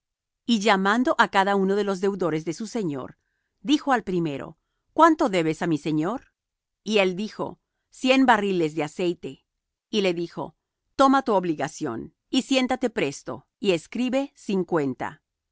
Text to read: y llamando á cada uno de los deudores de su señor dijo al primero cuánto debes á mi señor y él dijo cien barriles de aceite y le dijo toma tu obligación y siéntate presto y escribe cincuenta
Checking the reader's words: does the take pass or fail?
pass